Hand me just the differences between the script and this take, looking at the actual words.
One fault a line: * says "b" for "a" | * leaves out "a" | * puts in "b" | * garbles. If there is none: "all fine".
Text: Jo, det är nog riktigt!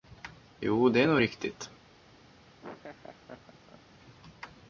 all fine